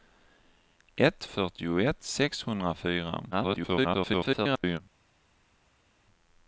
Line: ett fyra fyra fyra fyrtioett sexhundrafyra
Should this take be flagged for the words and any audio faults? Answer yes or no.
yes